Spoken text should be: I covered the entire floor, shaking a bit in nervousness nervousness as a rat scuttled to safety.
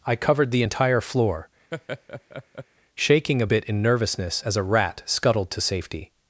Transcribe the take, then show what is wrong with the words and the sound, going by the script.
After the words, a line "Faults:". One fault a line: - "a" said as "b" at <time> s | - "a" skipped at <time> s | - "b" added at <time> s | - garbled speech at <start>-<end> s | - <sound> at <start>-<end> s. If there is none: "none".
I covered the entire floor, shaking a bit in nervousness as a rat scuttled to safety.
Faults:
- laugh at 1.7-2.7 s
- "nervousness" skipped at 4.4 s